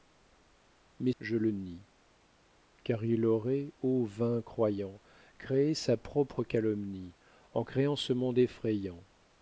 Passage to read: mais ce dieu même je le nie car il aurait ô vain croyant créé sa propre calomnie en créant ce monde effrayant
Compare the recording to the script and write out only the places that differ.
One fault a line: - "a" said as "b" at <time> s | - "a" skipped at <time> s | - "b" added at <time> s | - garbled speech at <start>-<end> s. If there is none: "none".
- "ce dieu même" skipped at 1.1 s